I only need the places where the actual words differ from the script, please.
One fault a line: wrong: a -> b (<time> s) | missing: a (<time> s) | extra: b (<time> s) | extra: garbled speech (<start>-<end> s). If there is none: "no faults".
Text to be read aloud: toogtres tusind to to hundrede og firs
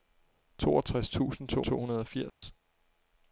no faults